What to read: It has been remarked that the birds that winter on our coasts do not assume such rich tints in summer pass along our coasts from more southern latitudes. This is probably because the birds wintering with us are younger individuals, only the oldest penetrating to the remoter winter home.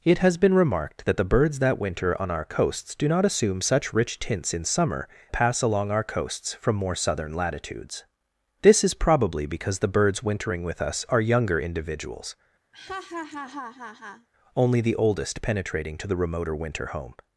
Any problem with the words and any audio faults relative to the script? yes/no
yes